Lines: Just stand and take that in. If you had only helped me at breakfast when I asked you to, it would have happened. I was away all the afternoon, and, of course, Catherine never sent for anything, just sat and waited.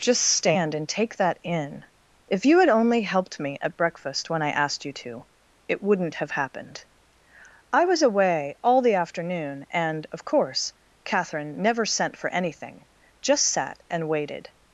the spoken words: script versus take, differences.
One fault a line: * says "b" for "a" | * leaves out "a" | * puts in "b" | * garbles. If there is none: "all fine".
* says "wouldn't" for "would"